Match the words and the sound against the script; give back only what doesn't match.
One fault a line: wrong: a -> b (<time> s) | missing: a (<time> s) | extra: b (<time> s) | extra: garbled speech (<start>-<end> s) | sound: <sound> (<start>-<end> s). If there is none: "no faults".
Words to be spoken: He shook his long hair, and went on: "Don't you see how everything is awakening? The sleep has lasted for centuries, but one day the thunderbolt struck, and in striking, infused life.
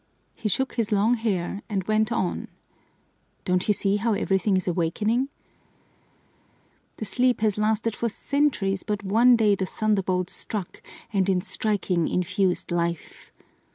no faults